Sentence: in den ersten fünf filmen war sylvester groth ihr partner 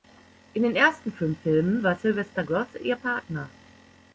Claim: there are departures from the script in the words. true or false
false